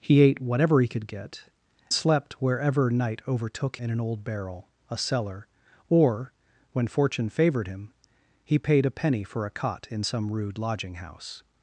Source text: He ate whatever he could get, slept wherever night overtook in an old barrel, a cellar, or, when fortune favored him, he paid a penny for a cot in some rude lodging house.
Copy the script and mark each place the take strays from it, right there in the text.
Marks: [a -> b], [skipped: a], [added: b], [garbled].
He ate whatever he could get, slept wherever night overtook in an old barrel, a cellar, or, when fortune favored him, he paid a penny for a cot in some rude lodging house.